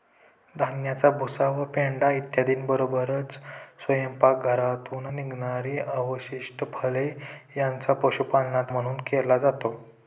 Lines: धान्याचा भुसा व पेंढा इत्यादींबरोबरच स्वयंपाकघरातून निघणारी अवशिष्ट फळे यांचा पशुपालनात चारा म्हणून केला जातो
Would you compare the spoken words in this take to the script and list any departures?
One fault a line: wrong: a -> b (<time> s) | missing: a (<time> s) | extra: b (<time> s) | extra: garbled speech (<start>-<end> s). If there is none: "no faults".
missing: चारा (8.7 s)